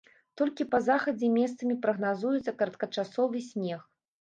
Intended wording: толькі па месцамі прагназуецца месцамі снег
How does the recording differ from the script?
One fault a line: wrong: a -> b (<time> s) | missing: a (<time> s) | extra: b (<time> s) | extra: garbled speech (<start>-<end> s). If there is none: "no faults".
extra: захадзе (0.9 s)
wrong: месцамі -> кароткачасовы (2.6 s)